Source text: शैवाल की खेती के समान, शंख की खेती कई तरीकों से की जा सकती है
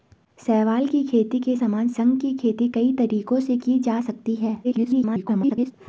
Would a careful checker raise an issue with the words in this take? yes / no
yes